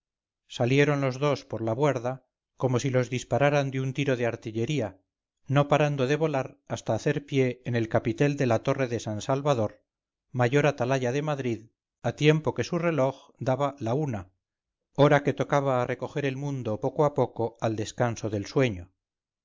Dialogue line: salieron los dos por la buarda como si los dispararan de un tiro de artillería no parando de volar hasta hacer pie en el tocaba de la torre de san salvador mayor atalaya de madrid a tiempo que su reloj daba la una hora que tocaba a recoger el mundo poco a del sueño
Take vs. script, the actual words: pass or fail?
fail